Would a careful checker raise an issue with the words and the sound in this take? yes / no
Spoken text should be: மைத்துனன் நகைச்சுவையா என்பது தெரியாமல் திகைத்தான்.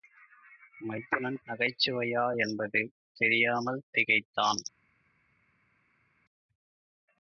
no